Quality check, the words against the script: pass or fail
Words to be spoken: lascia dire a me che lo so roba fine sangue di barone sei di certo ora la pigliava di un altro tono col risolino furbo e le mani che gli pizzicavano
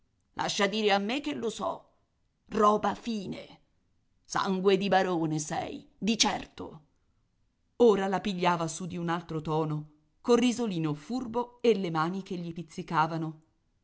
fail